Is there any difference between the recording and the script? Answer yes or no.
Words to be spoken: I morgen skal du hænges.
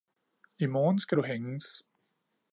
no